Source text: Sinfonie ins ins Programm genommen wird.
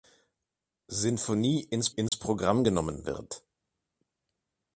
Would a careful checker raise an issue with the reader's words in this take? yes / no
no